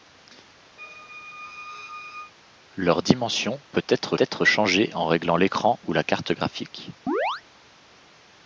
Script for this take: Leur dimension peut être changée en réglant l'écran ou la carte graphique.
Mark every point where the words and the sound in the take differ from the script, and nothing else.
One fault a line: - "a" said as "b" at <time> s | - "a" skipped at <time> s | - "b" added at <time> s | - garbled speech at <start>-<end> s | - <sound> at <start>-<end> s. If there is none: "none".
- squeak at 0.8-2.3 s
- "être" added at 4.2 s
- chirp at 7.1-7.4 s